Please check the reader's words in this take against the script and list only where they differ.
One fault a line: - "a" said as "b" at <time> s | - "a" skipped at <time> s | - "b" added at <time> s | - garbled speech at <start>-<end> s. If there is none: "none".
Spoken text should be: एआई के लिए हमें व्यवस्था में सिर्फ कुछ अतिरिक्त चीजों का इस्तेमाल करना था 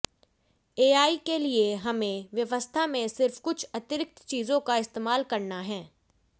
- "था" said as "है" at 5.6 s